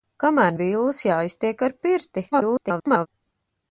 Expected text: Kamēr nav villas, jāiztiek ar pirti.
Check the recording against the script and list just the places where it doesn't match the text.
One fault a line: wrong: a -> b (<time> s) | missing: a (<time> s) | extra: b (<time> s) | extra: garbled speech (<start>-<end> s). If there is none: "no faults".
missing: nav (0.6 s)
extra: garbled speech (2.3-3.1 s)